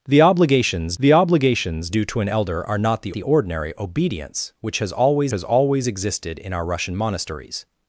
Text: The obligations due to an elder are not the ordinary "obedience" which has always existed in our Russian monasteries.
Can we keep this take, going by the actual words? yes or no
no